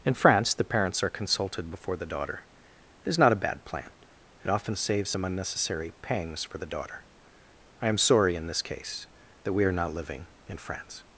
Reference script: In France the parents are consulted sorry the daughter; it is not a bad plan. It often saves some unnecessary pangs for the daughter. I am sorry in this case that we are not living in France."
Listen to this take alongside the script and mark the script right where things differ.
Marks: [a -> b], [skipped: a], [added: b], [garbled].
In France the parents are consulted [sorry -> before] the daughter; it is not a bad plan. It often saves some unnecessary pangs for the daughter. I am sorry in this case that we are not living in France."